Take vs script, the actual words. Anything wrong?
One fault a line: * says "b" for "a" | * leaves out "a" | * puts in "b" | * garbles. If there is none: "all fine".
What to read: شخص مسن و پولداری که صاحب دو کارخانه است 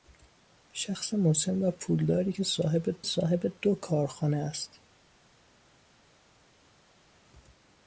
* puts in "صاحب"